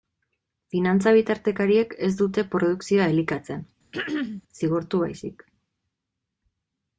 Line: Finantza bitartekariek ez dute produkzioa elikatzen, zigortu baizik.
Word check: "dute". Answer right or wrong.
right